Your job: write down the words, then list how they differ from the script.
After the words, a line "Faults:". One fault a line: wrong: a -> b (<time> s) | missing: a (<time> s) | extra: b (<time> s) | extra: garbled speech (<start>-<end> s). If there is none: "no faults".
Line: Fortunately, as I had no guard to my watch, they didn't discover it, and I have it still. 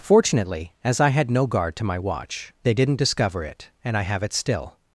Fortunately, as I had no guard to my watch, they didn't discover it, and I have it still.
Faults:
no faults